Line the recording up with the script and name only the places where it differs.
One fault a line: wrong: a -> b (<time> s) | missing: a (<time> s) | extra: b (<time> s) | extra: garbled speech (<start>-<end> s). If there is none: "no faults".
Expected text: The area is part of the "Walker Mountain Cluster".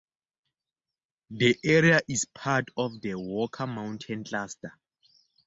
no faults